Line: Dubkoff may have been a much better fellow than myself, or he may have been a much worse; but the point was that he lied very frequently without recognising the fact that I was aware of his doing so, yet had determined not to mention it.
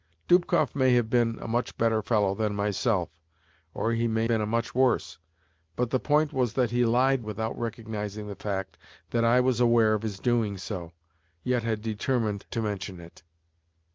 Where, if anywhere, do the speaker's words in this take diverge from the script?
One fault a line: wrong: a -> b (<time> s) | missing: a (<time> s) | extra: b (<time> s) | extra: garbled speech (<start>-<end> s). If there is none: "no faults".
missing: have (4.3 s)
missing: very frequently (7.2 s)
missing: not (12.5 s)